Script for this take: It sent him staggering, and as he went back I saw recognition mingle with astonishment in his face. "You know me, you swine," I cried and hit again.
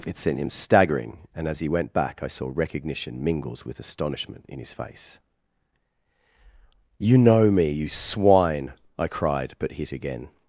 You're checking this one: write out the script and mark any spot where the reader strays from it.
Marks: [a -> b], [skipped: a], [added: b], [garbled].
It sent him staggering, and as he went back I saw recognition [mingle -> mingles] with astonishment in his face. "You know me, you swine," I cried [and -> but] hit again.